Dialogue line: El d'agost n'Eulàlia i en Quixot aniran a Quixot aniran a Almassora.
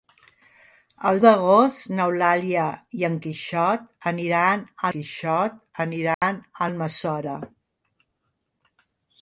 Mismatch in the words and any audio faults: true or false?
true